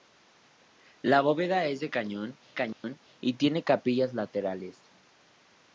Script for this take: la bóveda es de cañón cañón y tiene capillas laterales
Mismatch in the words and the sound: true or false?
true